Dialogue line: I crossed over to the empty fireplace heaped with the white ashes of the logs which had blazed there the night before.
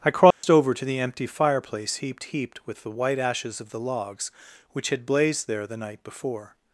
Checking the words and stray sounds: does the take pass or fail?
fail